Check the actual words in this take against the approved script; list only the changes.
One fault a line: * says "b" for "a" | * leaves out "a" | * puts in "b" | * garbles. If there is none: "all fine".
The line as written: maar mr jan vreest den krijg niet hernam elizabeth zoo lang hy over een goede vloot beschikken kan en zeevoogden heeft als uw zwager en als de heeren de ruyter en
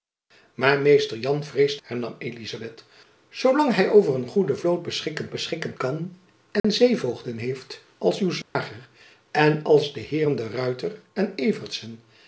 * leaves out "den krijg niet"
* puts in "beschikken"